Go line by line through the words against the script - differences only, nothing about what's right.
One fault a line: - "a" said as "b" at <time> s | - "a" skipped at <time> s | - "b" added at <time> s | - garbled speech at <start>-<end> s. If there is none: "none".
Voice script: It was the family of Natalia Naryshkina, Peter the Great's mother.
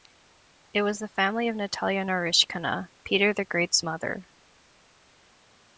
none